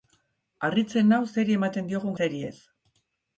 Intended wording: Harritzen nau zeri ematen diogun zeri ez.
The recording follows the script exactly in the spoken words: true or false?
true